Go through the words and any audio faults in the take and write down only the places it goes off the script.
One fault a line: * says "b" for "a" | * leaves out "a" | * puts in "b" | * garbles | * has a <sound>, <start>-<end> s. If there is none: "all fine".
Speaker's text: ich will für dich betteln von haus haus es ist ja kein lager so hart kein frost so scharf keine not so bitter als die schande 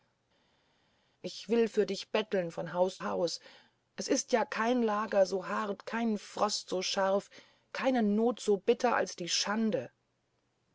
all fine